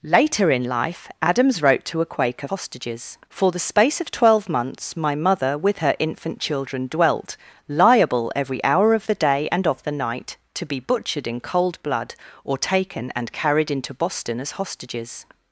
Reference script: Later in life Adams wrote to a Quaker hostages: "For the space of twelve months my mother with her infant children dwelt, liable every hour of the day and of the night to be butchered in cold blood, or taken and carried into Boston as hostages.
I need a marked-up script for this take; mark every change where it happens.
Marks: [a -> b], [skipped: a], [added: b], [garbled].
Later in life Adams wrote to a Quaker hostages: "For the space of twelve months my mother with her infant children dwelt, liable every hour of the day and of the night to be butchered in cold blood, or taken and carried into Boston as hostages.